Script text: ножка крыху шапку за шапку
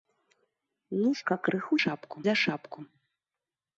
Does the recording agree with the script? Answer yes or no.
yes